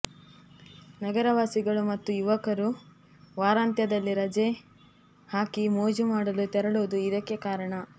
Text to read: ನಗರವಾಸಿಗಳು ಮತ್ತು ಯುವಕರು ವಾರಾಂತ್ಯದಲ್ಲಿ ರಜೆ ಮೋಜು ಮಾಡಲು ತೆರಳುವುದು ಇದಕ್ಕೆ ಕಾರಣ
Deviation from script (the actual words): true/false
true